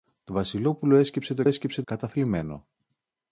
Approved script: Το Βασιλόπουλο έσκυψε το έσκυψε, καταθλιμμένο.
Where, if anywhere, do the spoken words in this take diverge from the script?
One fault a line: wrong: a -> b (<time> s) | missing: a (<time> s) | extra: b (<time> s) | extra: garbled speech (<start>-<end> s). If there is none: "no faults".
no faults